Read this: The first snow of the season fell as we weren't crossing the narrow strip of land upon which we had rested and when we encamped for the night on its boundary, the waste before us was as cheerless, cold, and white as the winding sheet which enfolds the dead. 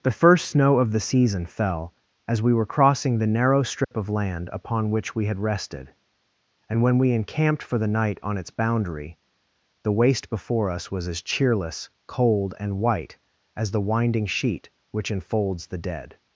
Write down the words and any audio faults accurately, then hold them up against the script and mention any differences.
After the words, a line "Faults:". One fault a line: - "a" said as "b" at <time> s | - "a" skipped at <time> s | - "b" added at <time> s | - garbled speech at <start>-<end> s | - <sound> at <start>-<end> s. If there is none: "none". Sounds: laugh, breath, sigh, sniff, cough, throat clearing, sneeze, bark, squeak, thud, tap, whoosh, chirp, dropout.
The first snow of the season fell as we were crossing the narrow strip of land upon which we had rested and when we encamped for the night on its boundary, the waste before us was as cheerless, cold, and white as the winding sheet which enfolds the dead.
Faults:
- "weren't" said as "were" at 2.5 s
- dropout at 3.8-3.9 s